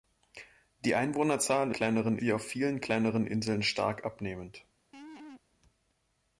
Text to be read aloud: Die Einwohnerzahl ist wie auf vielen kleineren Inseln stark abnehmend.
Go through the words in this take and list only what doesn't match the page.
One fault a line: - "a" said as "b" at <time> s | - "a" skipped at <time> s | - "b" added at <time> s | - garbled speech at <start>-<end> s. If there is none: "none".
- "ist" said as "kleineren" at 1.7 s